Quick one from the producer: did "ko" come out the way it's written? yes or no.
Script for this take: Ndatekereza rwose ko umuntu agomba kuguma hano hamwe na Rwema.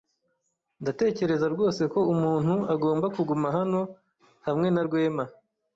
yes